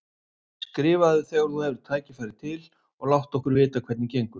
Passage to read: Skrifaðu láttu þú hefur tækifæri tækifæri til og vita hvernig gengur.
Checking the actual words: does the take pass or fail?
fail